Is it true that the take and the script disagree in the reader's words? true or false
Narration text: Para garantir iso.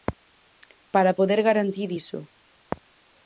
true